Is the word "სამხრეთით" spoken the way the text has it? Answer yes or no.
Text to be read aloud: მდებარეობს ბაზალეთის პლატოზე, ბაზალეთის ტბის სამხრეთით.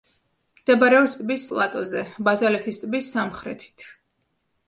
yes